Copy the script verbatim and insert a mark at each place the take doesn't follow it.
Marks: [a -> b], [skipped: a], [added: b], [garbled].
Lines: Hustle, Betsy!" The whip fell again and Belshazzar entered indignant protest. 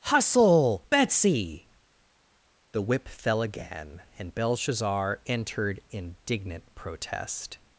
Hustle, Betsy!" The whip fell again and Belshazzar entered indignant protest.